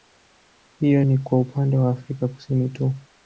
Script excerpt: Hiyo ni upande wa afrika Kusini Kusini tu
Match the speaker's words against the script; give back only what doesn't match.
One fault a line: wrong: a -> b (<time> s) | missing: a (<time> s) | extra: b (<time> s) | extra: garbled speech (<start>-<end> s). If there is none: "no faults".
extra: kwa (1.2 s)
missing: Kusini (2.7 s)